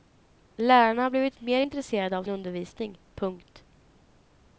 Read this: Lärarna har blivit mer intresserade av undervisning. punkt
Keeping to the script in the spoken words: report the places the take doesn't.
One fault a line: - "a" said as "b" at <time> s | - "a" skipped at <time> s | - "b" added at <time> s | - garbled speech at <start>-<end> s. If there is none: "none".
none